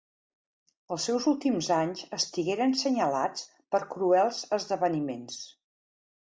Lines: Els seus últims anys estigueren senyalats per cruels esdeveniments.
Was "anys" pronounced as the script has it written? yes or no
yes